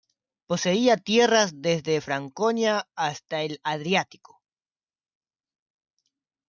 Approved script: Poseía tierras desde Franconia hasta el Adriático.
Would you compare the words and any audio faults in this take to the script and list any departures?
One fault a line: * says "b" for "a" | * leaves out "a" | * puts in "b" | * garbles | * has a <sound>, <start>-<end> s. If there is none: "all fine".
all fine